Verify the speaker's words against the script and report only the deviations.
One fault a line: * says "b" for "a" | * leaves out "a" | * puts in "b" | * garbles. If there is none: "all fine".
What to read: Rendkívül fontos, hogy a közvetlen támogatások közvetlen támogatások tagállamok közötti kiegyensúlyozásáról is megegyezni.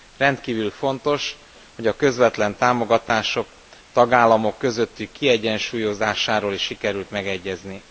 * leaves out "közvetlen támogatások"
* puts in "sikerült"